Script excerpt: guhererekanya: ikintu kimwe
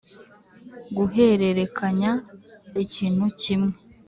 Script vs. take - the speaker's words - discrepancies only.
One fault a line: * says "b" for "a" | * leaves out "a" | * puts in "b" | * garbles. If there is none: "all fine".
all fine